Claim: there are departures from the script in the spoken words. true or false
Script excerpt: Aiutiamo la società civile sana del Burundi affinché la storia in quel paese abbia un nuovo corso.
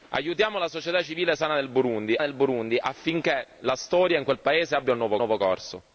true